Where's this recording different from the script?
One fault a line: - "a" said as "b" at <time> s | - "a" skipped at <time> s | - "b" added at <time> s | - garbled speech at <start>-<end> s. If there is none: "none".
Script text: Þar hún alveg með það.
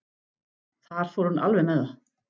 - "fór" added at 1.1 s